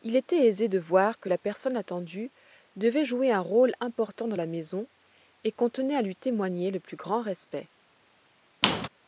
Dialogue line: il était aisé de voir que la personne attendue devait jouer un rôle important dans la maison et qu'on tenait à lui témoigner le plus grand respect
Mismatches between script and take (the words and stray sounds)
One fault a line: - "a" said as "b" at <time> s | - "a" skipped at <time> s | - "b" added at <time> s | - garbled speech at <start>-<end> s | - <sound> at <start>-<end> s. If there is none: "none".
- squeak at 8.6-8.9 s